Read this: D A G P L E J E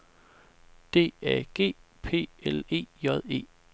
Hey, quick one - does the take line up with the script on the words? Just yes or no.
yes